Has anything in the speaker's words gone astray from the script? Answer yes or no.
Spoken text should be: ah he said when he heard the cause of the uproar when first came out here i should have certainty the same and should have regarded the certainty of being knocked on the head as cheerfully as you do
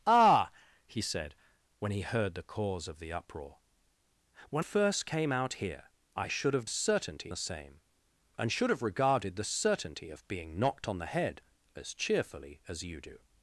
no